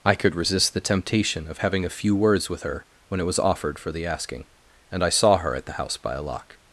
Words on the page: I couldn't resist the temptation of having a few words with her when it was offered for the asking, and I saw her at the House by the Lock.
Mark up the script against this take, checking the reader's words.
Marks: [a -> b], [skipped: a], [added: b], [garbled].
I [couldn't -> could] resist the temptation of having a few words with her when it was offered for the asking, and I saw her at the House by [the -> a] Lock.